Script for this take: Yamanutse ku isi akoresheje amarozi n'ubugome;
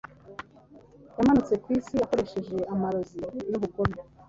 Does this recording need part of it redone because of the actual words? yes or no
no